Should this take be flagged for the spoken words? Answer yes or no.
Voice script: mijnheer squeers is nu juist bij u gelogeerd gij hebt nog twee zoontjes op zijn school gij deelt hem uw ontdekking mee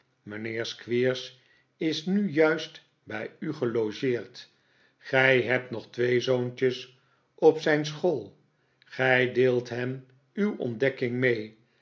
no